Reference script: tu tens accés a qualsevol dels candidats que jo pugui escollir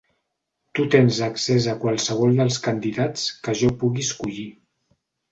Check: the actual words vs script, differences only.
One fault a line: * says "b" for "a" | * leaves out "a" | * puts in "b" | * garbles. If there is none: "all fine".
all fine